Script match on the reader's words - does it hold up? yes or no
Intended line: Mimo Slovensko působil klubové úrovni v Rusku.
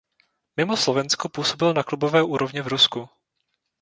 no